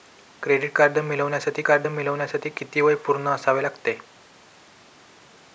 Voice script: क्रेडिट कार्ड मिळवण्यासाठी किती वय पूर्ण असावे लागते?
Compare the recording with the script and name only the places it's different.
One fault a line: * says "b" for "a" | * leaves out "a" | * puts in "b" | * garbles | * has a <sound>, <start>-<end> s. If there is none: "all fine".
* puts in "कार्ड मिळवण्यासाठी"